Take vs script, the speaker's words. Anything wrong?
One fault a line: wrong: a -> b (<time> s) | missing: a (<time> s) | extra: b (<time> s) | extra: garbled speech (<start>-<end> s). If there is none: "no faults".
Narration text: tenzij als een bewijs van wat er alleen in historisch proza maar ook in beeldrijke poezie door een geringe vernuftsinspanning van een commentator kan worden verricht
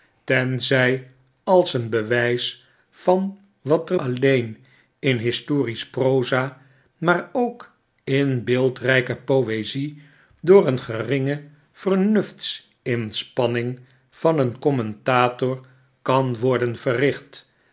no faults